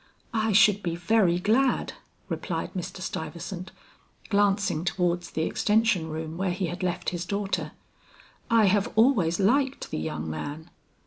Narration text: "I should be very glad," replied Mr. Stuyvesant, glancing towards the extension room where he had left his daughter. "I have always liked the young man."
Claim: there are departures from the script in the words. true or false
false